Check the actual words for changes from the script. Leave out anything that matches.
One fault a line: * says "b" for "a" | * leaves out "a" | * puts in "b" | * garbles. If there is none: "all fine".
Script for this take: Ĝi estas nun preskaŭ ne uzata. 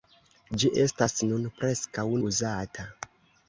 * leaves out "ne"